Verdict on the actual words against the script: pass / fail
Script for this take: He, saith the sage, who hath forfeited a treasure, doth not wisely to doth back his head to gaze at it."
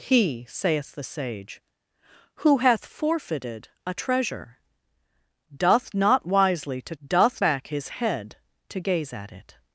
pass